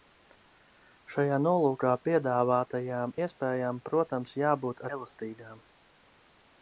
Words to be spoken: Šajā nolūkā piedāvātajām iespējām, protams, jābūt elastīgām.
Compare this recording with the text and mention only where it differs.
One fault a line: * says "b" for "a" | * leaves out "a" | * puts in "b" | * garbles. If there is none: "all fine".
all fine